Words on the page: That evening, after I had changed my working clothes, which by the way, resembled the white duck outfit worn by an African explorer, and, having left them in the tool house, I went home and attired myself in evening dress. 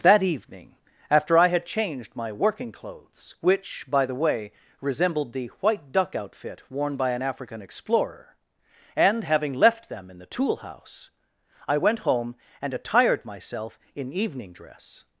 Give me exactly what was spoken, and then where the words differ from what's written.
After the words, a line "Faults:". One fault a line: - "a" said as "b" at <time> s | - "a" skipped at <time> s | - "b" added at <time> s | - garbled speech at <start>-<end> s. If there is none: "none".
That evening, after I had changed my working clothes, which by the way, resembled the white duck outfit worn by an African explorer, and, having left them in the tool house, I went home and attired myself in evening dress.
Faults:
none